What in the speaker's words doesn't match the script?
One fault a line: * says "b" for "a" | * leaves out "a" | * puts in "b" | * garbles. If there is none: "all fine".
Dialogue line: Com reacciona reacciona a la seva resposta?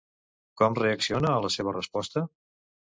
* leaves out "reacciona"